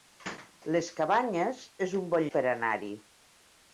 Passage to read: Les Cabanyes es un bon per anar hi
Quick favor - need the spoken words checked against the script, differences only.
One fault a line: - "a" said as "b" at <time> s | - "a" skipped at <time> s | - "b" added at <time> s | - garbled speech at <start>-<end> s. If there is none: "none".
none